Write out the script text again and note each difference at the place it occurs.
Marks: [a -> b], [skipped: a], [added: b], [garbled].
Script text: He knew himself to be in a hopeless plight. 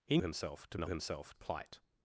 He [skipped: knew] himself to [skipped: be] in a [hopeless -> himself] plight.